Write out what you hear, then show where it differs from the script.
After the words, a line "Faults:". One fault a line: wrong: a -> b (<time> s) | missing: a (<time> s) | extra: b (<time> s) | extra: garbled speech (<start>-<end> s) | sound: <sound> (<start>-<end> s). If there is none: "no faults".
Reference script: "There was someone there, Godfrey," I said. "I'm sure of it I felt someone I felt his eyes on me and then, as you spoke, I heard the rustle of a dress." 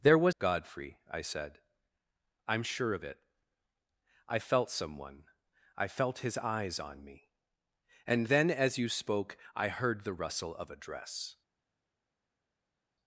"There was Godfrey," I said. "I'm sure of it I felt someone I felt his eyes on me and then, as you spoke, I heard the rustle of a dress."
Faults:
missing: someone there (0.3 s)